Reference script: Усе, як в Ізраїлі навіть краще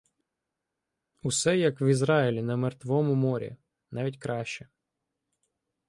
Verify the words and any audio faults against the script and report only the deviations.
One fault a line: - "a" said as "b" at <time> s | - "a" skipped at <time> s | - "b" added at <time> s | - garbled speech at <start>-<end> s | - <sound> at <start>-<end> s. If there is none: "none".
- "на Мертвому морі" added at 2.4 s